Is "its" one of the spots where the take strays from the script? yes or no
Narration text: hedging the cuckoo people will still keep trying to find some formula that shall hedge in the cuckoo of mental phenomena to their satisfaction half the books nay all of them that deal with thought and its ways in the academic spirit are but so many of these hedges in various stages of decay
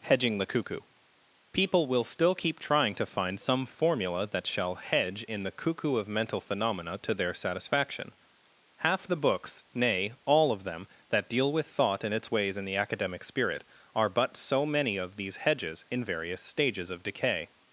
no